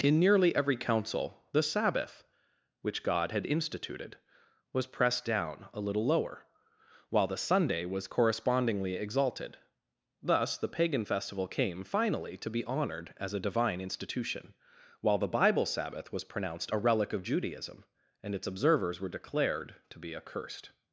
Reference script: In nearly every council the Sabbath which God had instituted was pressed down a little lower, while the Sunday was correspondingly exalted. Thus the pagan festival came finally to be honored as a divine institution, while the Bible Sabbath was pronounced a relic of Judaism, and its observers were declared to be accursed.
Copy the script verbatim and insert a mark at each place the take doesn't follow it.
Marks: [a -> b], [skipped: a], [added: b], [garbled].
In nearly every council the Sabbath which God had instituted was pressed down a little lower, while the Sunday was correspondingly exalted. Thus the pagan festival came finally to be honored as a divine institution, while the Bible Sabbath was pronounced a relic of Judaism, and its observers were declared to be accursed.